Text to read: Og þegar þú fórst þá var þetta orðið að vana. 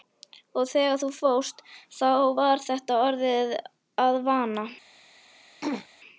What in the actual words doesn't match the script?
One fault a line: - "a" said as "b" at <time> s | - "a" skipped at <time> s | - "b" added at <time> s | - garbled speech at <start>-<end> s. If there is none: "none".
none